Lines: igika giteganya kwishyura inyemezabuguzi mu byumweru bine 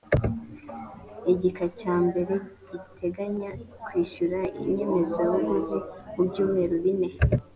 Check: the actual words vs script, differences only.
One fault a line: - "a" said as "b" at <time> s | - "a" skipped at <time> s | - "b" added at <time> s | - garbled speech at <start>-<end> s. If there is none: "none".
- "cya mbere" added at 1.8 s